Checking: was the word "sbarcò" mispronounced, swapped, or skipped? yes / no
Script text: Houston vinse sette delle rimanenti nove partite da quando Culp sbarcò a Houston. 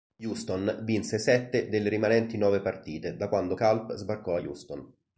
no